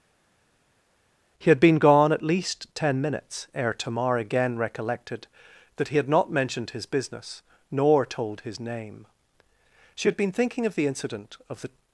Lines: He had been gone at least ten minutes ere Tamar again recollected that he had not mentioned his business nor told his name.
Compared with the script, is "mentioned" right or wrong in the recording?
right